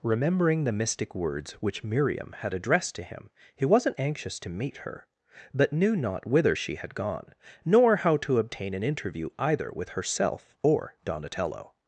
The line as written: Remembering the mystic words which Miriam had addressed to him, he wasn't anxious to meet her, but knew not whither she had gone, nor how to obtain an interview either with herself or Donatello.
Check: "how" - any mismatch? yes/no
no